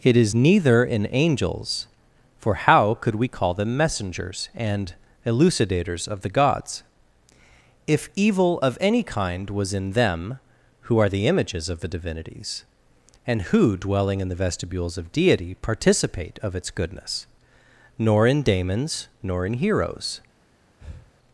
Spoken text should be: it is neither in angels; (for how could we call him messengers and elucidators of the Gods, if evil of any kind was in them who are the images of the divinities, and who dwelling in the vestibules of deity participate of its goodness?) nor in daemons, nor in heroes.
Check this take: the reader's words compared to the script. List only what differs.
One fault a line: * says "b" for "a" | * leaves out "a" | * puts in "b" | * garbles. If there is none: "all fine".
* says "them" for "him"